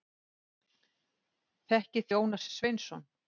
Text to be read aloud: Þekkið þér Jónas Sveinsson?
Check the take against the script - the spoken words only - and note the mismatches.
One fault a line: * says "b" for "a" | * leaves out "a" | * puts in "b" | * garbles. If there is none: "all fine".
* leaves out "þér"